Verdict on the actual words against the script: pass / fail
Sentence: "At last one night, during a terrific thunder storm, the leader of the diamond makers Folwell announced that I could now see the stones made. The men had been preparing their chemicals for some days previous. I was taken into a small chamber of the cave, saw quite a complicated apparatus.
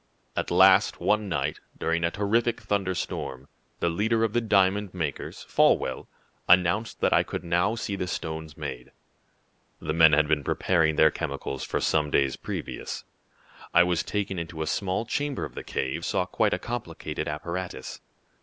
pass